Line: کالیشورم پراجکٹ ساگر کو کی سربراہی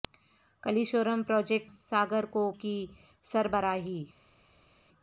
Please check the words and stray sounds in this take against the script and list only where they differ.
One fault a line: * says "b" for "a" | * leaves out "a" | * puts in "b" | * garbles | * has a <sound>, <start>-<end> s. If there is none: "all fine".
all fine